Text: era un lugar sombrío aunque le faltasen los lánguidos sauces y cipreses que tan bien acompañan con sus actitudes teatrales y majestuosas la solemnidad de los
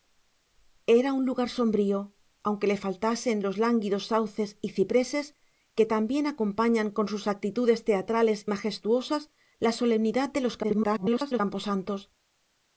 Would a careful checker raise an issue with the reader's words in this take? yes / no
yes